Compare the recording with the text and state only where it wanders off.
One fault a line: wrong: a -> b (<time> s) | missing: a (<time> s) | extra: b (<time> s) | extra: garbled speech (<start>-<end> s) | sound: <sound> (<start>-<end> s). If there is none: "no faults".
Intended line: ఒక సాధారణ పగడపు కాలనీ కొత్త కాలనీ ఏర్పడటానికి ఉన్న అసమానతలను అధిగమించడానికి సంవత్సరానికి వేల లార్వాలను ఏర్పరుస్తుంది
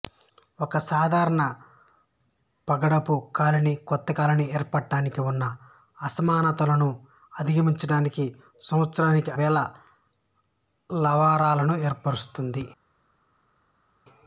no faults